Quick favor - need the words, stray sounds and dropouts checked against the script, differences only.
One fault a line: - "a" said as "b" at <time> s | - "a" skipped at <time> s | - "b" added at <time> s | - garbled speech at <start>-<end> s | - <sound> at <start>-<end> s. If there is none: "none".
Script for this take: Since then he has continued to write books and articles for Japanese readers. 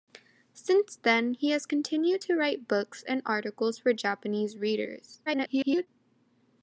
- garbled speech at 5.3-5.9 s